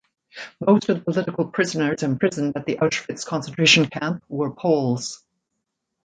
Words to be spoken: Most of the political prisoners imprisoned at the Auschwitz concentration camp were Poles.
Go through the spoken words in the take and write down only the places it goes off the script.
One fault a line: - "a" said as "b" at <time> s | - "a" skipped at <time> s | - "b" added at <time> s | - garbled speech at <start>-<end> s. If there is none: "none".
none